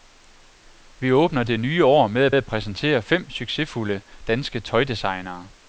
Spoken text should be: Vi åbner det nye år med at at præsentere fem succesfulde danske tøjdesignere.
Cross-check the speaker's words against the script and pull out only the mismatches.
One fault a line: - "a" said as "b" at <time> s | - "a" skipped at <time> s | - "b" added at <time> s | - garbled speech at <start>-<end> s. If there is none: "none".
none